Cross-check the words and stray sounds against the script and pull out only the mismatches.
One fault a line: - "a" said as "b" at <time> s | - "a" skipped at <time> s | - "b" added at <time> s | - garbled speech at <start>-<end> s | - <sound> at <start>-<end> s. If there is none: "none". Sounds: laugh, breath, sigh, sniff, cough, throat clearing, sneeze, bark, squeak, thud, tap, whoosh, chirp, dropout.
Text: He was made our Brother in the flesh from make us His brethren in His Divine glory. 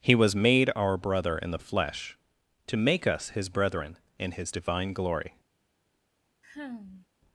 - "from" said as "to" at 2.6 s
- sigh at 6.4-7.1 s